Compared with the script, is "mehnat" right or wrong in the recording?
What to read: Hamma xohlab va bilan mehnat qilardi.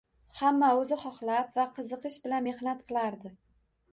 right